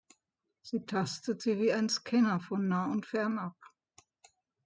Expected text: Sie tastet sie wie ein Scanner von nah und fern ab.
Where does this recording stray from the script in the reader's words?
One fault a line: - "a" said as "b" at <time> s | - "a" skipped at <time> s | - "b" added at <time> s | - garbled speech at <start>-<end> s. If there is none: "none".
none